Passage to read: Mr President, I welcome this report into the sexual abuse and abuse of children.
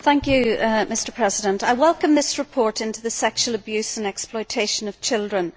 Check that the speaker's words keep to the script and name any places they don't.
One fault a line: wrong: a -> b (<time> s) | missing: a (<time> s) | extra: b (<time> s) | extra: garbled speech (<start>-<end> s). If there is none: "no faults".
wrong: abuse -> exploitation (4.1 s)